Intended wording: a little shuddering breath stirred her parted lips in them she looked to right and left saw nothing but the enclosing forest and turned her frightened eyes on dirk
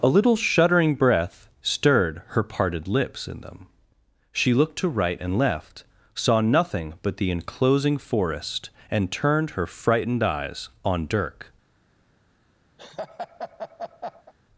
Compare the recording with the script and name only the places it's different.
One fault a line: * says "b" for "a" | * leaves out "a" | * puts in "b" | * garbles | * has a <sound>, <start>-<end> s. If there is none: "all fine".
* has a laugh, 12.8-14.3 s